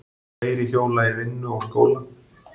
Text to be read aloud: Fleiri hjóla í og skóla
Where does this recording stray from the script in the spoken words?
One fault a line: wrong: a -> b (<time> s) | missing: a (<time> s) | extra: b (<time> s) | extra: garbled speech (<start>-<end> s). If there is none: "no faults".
extra: vinnu (1.2 s)